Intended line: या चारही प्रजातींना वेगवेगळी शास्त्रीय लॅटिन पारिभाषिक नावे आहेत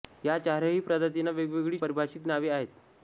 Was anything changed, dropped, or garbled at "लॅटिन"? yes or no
yes